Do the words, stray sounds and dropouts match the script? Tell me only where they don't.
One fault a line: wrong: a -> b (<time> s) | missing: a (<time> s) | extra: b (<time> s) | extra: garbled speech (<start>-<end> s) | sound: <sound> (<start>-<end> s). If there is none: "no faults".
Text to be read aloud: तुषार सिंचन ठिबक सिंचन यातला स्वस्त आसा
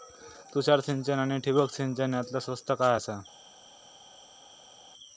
extra: आनी (1.2 s)
extra: काय (2.7 s)